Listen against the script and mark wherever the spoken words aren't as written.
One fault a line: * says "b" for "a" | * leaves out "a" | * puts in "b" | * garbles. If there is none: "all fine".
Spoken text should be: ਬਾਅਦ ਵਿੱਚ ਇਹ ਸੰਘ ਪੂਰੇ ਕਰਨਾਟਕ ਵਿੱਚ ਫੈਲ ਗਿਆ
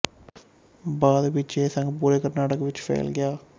all fine